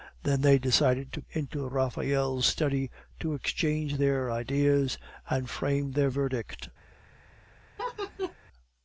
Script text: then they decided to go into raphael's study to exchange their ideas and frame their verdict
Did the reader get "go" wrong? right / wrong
wrong